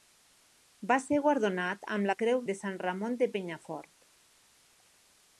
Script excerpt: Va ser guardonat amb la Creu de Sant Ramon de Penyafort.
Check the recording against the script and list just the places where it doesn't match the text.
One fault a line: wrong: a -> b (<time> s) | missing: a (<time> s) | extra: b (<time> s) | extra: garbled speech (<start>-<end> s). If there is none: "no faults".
no faults